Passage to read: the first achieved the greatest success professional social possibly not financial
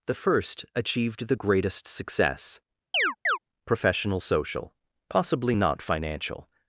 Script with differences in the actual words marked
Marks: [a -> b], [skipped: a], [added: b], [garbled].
the first achieved the greatest success professional social possibly not financial